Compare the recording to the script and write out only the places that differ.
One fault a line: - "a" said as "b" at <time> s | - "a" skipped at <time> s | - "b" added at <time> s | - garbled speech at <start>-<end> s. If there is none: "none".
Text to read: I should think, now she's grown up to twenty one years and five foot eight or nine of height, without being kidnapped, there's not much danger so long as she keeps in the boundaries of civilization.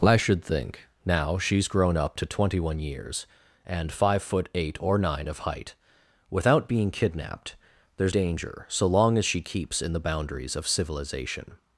- "not much" skipped at 8.2 s